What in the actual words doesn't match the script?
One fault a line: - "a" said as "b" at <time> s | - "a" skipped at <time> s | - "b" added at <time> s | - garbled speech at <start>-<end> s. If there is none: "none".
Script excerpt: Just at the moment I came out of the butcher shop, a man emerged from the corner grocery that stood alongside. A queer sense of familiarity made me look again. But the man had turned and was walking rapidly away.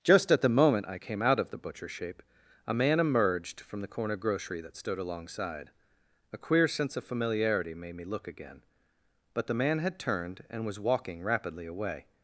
- "shop" said as "shape" at 1.9 s